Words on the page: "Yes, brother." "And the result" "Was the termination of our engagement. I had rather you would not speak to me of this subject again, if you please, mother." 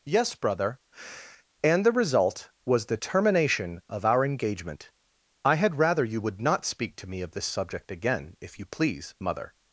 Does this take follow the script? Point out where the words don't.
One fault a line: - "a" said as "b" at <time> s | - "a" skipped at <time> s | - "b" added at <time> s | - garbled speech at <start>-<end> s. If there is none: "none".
none